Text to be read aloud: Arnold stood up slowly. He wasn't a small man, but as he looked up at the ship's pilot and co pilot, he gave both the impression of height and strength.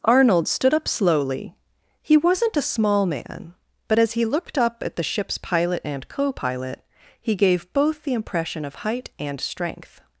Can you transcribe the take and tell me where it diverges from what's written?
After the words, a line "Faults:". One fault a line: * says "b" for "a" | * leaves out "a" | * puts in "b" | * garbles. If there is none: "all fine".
Arnold stood up slowly. He wasn't a small man, but as he looked up at the ship's pilot and co pilot, he gave both the impression of height and strength.
Faults:
all fine